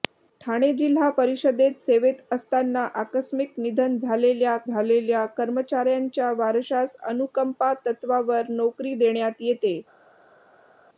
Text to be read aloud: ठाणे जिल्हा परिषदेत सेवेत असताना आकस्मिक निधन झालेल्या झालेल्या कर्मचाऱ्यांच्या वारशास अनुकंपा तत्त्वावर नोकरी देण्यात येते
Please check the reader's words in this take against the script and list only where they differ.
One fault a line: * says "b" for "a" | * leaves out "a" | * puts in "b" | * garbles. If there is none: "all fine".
all fine